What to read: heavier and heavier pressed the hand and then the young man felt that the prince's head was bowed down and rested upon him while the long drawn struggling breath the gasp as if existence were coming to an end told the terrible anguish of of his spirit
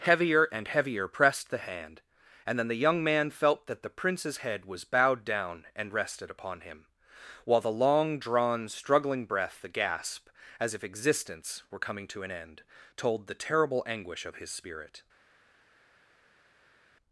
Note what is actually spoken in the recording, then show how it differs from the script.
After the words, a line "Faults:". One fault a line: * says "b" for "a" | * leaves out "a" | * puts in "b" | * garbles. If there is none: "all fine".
heavier and heavier pressed the hand and then the young man felt that the prince's head was bowed down and rested upon him while the long drawn struggling breath the gasp as if existence were coming to an end told the terrible anguish of his spirit
Faults:
* leaves out "of"